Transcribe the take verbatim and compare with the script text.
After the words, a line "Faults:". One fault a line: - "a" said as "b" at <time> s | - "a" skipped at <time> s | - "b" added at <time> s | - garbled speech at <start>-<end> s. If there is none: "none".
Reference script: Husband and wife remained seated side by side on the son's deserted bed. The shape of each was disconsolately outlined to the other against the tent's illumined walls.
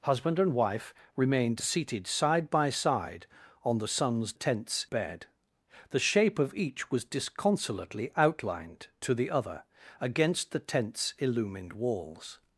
Husband and wife remained seated side by side on the son's tent's bed. The shape of each was disconsolately outlined to the other against the tent's illumined walls.
Faults:
- "deserted" said as "tent's" at 4.3 s